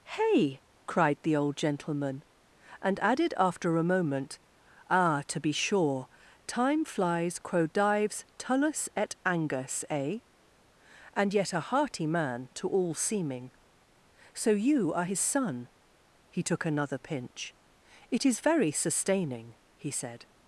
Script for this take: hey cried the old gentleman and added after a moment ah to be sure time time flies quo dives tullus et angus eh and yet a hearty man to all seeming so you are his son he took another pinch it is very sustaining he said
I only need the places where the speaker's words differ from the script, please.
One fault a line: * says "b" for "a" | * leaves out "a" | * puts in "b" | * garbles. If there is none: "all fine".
* leaves out "time"